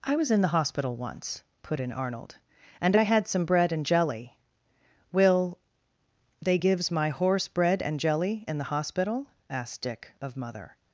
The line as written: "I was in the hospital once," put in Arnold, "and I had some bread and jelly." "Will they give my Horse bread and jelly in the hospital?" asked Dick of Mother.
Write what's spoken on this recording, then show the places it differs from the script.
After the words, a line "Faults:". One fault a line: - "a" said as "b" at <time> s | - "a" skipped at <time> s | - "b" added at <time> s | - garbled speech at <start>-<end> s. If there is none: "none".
"I was in the hospital once," put in Arnold, "and I had some bread and jelly." "Will they gives my Horse bread and jelly in the hospital?" asked Dick of Mother.
Faults:
- "give" said as "gives" at 6.5 s